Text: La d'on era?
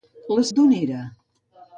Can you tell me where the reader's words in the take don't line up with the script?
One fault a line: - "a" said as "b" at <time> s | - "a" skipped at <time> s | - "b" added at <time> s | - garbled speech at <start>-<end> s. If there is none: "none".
none